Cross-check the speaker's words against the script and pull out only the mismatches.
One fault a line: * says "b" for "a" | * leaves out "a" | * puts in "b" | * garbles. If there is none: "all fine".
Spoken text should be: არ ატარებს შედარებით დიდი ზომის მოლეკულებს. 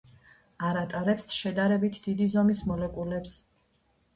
all fine